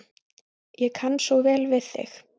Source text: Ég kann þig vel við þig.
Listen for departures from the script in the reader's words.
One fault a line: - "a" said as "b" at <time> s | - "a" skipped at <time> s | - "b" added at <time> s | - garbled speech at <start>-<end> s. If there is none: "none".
- "þig" said as "svo" at 1.2 s